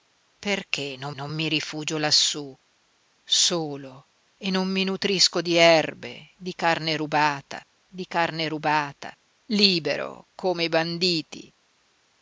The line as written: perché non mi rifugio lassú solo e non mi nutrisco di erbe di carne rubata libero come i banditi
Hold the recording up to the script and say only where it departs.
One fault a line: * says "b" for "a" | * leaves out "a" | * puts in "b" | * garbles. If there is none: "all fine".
* puts in "non"
* puts in "di carne rubata"